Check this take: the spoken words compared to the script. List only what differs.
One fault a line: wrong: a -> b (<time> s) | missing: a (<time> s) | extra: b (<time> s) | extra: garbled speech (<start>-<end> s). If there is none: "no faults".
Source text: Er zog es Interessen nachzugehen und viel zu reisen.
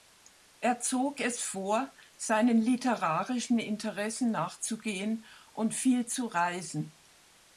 extra: vor seinen literarischen (1.4 s)